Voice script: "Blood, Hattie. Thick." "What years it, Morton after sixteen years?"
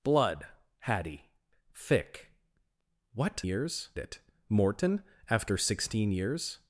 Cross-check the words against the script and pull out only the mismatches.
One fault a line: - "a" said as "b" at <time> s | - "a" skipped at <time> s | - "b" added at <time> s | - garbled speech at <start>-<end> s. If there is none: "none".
none